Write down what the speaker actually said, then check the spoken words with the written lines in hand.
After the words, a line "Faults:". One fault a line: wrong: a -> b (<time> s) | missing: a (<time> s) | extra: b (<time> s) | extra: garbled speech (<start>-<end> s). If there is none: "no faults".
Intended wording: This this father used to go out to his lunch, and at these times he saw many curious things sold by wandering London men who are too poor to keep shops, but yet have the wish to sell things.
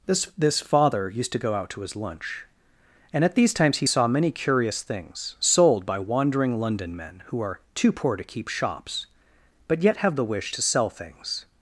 This this father used to go out to his lunch, and at these times he saw many curious things sold by wandering London men who are too poor to keep shops, but yet have the wish to sell things.
Faults:
no faults